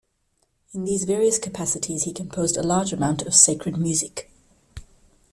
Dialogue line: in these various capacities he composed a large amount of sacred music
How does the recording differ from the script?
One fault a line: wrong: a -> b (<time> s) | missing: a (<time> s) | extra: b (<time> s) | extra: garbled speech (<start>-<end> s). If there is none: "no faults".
no faults